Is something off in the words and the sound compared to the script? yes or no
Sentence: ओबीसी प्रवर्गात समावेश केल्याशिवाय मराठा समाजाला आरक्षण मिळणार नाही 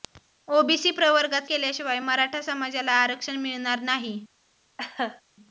yes